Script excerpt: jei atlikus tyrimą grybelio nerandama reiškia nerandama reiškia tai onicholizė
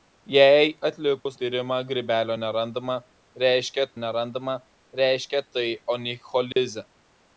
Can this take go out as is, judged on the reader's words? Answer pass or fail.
pass